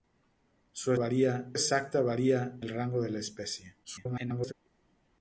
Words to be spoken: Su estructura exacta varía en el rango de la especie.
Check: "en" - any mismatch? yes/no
yes